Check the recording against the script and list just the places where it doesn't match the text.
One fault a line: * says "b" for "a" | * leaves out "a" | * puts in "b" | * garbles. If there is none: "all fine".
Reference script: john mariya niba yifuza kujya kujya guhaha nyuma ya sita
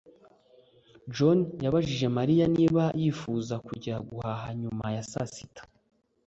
* puts in "yabajije"
* leaves out "kujya"
* puts in "saa"